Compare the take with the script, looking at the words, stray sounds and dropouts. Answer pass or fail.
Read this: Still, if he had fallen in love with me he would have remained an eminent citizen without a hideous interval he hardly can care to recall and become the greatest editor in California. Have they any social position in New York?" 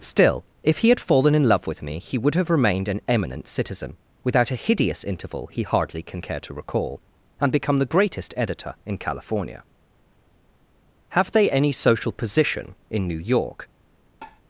fail